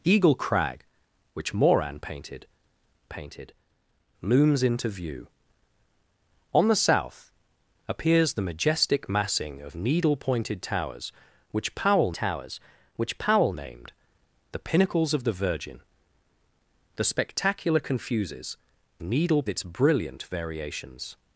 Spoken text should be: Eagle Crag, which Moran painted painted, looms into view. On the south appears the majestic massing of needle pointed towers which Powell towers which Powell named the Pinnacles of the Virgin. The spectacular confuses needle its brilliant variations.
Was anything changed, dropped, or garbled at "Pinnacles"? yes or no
no